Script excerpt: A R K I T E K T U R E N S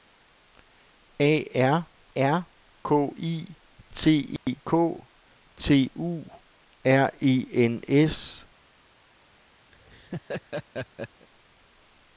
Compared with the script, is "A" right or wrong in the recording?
right